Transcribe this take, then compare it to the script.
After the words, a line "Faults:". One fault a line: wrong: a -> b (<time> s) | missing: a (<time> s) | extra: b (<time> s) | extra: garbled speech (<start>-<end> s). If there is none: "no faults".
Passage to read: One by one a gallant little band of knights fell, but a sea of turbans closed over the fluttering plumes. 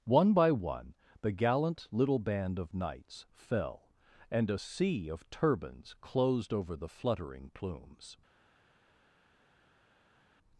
One by one the gallant little band of knights fell, and a sea of turbans closed over the fluttering plumes.
Faults:
wrong: a -> the (1.2 s)
wrong: but -> and (4.3 s)